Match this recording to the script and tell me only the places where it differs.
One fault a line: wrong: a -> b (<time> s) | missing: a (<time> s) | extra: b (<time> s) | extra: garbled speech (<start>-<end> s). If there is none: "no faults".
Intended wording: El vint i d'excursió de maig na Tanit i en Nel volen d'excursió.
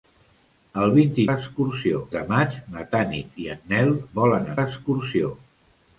no faults